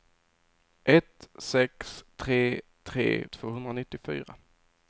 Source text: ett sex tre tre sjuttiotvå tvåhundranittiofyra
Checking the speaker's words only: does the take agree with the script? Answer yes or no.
no